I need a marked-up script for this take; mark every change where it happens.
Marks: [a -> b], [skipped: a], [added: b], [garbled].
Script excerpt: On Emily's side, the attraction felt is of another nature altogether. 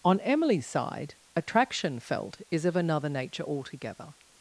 On Emily's side, [skipped: the] attraction felt is of another nature altogether.